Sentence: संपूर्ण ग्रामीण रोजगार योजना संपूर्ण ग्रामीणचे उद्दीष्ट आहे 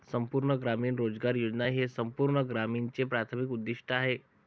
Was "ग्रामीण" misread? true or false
false